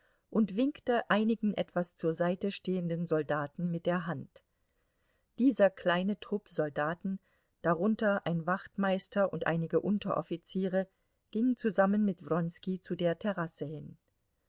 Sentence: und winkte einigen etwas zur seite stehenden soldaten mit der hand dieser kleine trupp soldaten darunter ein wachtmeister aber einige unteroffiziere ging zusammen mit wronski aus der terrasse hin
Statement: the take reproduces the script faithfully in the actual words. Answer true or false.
false